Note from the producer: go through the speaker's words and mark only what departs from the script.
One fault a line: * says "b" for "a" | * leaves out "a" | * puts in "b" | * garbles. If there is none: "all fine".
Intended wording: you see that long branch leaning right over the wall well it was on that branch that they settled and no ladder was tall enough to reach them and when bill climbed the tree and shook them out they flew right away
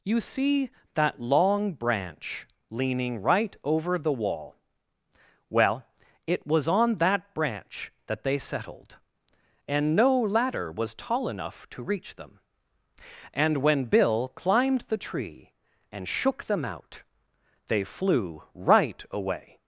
all fine